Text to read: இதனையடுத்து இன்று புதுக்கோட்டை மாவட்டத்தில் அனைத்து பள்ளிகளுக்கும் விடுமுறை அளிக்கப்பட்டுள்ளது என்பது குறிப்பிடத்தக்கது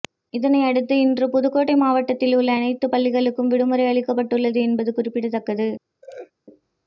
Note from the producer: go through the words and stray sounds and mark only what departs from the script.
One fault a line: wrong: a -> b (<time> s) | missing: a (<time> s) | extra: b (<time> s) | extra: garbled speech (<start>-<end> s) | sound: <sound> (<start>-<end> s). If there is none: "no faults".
extra: உள்ள (2.4 s)
sound: laugh (6.0-6.3 s)